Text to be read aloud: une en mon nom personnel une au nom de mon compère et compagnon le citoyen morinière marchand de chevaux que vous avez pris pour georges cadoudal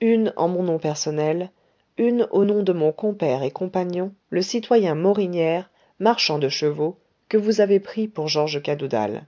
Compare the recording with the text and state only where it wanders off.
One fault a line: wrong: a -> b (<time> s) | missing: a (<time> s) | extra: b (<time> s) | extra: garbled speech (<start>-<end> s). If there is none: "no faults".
no faults